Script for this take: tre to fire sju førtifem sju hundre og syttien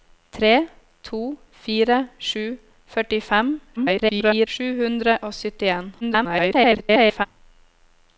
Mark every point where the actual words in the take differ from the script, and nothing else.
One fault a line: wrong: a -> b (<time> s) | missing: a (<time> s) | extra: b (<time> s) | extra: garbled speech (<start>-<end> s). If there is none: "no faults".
extra: garbled speech (3.8-4.5 s)
extra: garbled speech (6.0-7.3 s)